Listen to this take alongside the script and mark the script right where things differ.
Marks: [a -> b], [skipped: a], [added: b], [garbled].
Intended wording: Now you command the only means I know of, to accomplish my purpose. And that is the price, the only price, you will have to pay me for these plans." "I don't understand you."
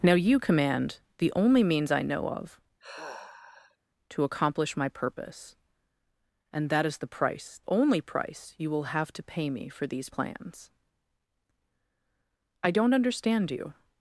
Now you command the only means I know of, to accomplish my purpose. And that is the price, [skipped: the] only price, you will have to pay me for these plans." "I don't understand you."